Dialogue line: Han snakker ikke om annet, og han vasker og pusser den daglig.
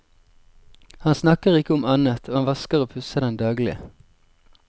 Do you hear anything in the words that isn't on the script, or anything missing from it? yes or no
no